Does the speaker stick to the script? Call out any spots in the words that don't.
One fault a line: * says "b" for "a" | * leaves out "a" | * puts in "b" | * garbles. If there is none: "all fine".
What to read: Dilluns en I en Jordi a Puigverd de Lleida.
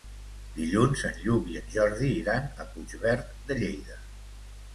* puts in "Lluc"
* puts in "iran"